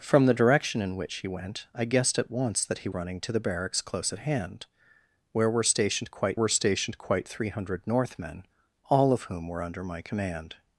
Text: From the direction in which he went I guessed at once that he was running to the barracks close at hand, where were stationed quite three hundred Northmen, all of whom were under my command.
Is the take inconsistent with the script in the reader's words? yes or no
yes